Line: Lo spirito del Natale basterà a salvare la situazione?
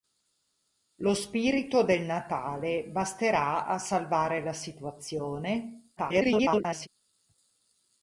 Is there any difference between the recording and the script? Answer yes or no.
yes